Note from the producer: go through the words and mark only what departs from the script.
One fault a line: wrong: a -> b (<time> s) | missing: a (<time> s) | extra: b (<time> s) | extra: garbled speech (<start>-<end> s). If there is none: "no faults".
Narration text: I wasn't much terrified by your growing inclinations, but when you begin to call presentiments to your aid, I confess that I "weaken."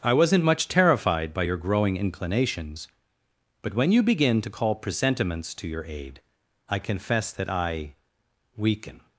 no faults